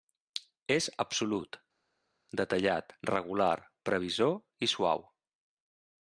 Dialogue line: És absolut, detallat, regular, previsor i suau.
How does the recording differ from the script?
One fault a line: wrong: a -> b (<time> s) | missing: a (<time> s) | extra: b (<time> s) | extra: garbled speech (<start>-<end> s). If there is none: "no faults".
no faults